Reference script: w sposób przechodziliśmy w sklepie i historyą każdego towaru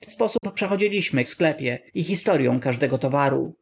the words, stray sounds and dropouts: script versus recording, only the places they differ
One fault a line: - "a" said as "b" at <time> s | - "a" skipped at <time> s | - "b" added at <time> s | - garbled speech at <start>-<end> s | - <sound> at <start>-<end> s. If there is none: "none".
- dropout at 0.4-0.4 s